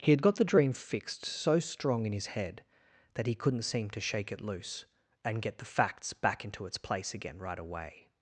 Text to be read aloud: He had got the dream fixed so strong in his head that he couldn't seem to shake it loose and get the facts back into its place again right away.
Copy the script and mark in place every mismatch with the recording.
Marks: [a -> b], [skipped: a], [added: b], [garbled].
He had got the dream fixed so strong in his head that he couldn't seem to shake it loose and get the facts back into its place again right away.